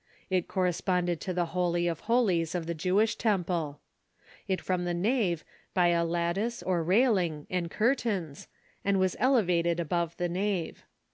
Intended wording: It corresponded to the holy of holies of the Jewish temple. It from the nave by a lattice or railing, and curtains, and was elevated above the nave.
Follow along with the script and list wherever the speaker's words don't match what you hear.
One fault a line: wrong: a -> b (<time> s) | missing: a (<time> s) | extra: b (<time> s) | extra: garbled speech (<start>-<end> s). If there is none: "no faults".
no faults